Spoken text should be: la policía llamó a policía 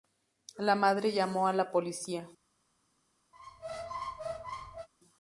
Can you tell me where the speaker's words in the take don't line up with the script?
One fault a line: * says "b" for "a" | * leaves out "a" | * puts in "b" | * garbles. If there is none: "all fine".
* says "madre" for "policía"
* puts in "la"